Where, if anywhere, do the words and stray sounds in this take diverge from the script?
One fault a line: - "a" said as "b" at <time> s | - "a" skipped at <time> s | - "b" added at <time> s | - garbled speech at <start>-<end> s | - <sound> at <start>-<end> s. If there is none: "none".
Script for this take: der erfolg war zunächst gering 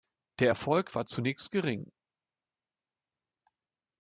none